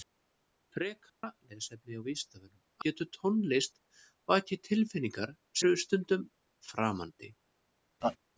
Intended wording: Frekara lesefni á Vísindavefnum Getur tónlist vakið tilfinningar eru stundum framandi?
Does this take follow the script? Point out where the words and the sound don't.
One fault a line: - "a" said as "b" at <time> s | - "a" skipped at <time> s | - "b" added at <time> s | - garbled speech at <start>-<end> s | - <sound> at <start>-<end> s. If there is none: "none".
- dropout at 1.1-1.2 s
- laugh at 8.0-8.2 s